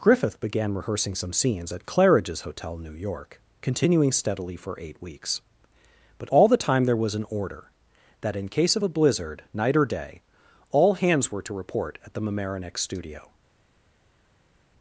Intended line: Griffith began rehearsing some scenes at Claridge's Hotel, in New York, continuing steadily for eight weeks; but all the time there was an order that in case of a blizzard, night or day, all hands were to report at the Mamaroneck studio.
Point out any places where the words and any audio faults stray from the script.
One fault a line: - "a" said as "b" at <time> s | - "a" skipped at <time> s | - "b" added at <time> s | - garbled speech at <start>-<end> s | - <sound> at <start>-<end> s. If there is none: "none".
- "in" skipped at 2.8 s